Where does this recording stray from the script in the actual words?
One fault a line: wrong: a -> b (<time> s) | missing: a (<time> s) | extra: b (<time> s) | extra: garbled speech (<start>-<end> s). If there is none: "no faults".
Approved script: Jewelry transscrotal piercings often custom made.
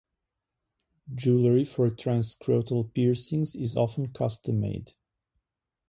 extra: for (1.6 s)
extra: is (3.5 s)